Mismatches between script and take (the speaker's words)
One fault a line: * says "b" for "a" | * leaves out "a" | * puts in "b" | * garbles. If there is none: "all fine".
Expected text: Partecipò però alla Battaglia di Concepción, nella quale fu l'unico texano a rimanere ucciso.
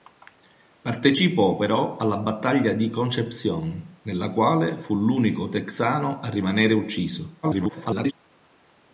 * garbles